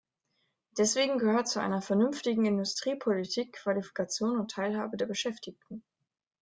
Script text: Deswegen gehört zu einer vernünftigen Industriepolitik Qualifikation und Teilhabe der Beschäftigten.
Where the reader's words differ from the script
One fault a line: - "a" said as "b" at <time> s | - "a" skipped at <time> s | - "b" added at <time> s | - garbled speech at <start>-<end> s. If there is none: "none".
none